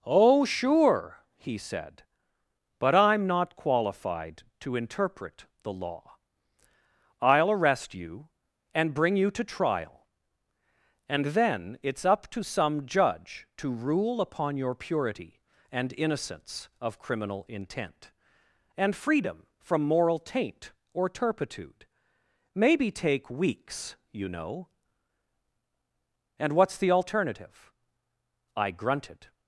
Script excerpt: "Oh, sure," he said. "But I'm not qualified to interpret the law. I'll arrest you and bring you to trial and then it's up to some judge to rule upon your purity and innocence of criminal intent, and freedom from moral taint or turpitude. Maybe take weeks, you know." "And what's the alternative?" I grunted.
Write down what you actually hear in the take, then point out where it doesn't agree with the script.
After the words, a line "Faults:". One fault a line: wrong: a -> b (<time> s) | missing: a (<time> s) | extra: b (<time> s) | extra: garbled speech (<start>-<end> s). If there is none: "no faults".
"Oh, sure," he said. "But I'm not qualified to interpret the law. I'll arrest you and bring you to trial and then it's up to some judge to rule upon your purity and innocence of criminal intent, and freedom from moral taint or turpitude. Maybe take weeks, you know." "And what's the alternative?" I grunted.
Faults:
no faults